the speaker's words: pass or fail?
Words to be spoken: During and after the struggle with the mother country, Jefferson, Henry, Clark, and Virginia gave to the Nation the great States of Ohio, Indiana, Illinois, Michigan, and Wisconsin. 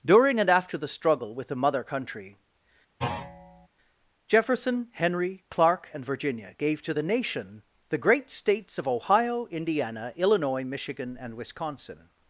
pass